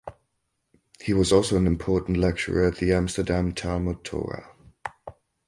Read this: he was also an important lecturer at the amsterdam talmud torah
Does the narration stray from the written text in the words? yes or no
no